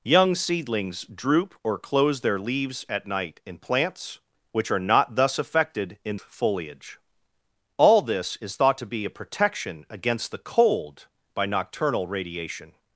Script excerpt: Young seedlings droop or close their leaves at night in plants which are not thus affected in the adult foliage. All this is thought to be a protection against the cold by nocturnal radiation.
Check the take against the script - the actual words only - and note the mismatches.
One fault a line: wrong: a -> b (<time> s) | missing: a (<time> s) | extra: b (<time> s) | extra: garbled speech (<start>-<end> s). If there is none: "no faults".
missing: the adult (6.2 s)